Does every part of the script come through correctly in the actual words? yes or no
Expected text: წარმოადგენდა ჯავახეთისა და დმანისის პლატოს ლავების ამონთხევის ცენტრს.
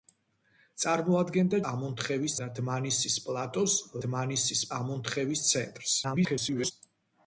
no